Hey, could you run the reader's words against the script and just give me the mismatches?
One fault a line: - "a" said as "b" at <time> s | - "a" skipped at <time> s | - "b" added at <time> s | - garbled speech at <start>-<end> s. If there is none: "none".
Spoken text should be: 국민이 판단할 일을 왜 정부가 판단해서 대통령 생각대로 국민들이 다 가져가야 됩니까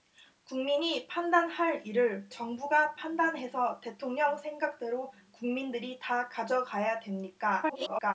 - "왜" skipped at 2.3 s
- garbled speech at 7.6-8.1 s